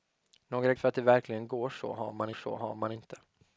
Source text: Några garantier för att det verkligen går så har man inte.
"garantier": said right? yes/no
no